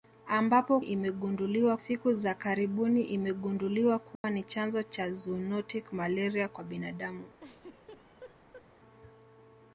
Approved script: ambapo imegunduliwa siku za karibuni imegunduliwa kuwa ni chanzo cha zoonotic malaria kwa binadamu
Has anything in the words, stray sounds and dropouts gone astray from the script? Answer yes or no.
yes